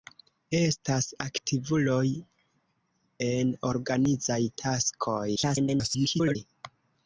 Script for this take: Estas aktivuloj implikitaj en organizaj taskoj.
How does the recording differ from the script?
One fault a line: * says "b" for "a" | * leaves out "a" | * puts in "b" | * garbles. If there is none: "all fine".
* leaves out "implikitaj"
* garbles